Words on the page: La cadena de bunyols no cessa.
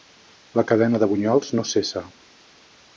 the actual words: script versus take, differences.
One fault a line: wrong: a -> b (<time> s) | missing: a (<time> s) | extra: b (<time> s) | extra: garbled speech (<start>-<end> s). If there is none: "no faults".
no faults